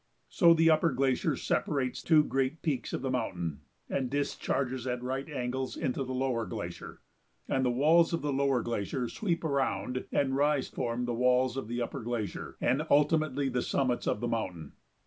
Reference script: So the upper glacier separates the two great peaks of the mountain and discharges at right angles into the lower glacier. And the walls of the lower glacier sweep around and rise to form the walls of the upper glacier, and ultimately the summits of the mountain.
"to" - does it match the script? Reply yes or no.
no